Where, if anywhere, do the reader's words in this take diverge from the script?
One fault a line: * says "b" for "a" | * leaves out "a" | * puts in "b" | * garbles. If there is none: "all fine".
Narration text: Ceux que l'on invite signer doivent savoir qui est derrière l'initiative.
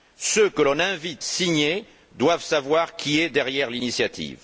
all fine